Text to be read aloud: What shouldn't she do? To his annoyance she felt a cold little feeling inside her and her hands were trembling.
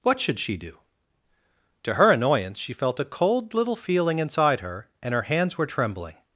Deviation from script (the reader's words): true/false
true